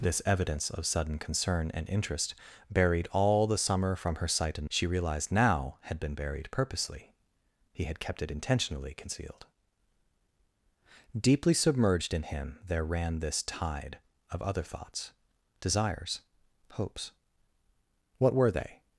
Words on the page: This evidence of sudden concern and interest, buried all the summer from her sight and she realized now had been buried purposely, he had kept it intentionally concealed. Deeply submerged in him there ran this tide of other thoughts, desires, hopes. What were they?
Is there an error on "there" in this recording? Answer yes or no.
no